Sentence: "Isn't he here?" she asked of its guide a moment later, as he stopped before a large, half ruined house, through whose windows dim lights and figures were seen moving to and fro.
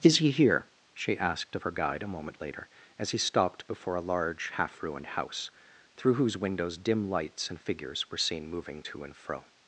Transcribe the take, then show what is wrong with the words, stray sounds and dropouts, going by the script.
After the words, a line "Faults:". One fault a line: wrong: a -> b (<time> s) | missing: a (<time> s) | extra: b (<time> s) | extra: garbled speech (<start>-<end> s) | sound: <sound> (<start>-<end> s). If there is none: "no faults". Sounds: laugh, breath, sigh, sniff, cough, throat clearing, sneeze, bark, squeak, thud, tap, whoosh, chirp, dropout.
"Is he here?" she asked of her guide a moment later, as he stopped before a large, half ruined house, through whose windows dim lights and figures were seen moving to and fro.
Faults:
wrong: Isn't -> Is (0.0 s)
wrong: its -> her (1.6 s)